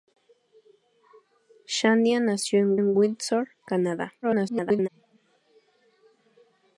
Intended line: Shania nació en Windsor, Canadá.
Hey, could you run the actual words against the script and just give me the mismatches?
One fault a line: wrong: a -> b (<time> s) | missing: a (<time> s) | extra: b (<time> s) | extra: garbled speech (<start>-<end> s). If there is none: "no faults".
extra: en (2.7 s)
extra: garbled speech (4.2-4.9 s)